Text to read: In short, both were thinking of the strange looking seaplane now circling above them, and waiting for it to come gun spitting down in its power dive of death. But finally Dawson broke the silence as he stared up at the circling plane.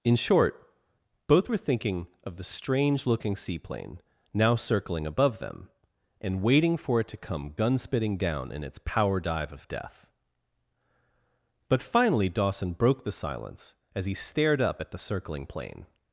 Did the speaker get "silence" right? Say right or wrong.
right